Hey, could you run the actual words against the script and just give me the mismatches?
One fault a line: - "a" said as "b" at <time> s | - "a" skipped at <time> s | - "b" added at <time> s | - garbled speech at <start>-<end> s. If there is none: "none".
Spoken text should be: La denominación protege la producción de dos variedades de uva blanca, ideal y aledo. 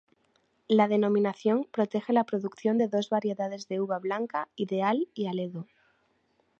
none